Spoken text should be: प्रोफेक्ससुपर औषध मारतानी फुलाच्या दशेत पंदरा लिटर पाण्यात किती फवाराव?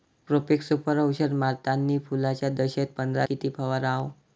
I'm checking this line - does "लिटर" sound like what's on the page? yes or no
no